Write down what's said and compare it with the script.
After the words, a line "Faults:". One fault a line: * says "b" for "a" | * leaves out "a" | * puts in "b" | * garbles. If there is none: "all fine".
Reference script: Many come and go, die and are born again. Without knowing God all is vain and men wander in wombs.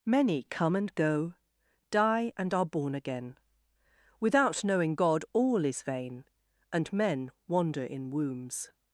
Many come and go, die and are born again. Without knowing God all is vain and men wander in wombs.
Faults:
all fine